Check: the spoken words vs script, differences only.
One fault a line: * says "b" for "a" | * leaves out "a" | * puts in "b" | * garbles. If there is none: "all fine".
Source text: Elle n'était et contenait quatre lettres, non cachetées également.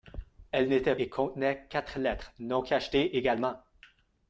all fine